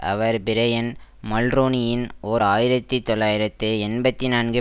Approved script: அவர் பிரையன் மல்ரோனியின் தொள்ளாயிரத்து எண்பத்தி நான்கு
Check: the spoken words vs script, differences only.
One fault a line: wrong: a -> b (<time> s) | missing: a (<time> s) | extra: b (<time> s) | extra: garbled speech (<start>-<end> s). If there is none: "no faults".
extra: ஓர் ஆயிரத்தி (2.2 s)